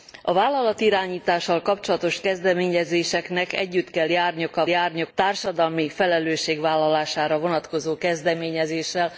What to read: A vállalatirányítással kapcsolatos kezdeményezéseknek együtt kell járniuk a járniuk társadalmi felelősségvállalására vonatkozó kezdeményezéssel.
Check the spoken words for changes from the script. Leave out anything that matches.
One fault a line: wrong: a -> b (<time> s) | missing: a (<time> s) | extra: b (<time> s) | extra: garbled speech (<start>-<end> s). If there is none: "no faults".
no faults